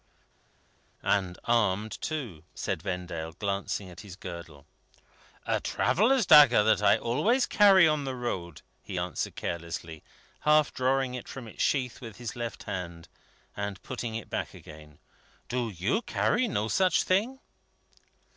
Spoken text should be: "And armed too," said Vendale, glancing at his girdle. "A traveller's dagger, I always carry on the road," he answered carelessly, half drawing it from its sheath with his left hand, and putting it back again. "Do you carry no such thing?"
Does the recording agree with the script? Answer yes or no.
no